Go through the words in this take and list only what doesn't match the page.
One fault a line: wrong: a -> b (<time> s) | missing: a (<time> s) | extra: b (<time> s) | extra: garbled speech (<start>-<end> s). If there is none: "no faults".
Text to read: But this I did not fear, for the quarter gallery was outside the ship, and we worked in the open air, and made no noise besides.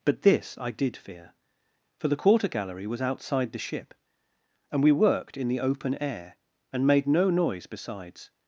missing: not (1.0 s)